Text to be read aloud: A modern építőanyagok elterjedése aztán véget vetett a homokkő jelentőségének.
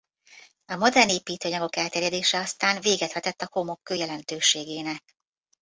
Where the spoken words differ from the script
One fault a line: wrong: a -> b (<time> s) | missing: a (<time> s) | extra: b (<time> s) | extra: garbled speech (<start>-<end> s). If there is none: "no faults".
no faults